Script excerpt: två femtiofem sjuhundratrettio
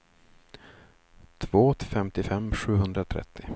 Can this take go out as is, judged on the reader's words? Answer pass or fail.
pass